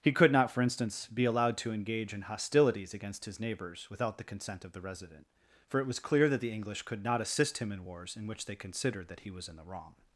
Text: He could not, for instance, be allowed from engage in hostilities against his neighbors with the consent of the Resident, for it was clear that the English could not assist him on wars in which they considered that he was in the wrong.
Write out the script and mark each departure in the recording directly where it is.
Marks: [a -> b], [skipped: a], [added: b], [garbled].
He could not, for instance, be allowed [from -> to] engage in hostilities against his neighbors [with -> without] the consent of the Resident, for it was clear that the English could not assist him [on -> in] wars in which they considered that he was in the wrong.